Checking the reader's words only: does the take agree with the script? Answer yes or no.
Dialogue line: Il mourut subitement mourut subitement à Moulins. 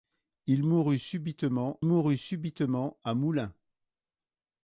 yes